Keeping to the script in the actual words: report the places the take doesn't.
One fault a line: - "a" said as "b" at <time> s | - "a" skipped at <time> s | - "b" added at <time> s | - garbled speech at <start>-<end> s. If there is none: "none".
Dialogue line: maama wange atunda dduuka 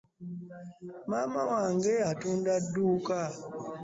none